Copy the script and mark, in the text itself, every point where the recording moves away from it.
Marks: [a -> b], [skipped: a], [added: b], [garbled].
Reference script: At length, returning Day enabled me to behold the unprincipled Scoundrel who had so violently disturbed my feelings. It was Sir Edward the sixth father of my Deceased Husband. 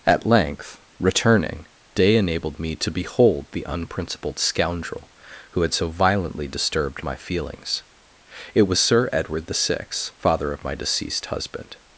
At length, returning Day enabled me to behold the unprincipled Scoundrel who had so violently disturbed my feelings. It was Sir Edward the sixth father of my Deceased Husband.